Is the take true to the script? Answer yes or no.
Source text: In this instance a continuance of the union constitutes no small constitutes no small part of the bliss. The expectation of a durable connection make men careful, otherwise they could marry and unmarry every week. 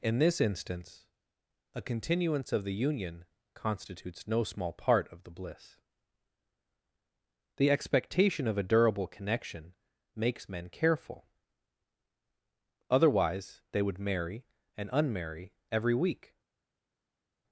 no